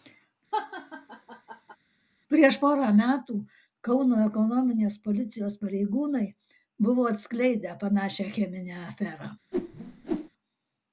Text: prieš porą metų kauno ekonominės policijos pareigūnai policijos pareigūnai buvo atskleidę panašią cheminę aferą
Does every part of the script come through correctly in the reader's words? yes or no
no